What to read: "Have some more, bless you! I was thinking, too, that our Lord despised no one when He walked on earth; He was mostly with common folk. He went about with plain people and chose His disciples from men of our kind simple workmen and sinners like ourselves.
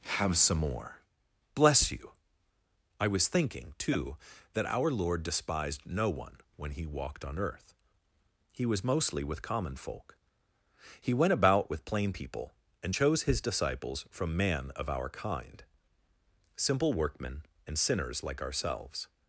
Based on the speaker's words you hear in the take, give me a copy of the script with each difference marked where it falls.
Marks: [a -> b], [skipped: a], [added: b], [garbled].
"Have some more, bless you! I was thinking, too, that our Lord despised no one when He walked on earth; He was mostly with common folk. He went about with plain people and chose His disciples from [men -> man] of our kind simple workmen and sinners like ourselves.